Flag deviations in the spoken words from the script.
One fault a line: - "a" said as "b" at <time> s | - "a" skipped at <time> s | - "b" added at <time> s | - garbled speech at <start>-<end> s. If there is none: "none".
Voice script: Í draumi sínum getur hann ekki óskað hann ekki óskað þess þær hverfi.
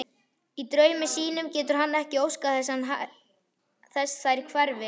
- "hann ekki óskað" skipped at 2.6 s